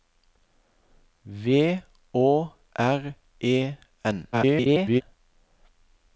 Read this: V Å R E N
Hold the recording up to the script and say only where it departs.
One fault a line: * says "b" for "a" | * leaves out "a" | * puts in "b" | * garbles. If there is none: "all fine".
* garbles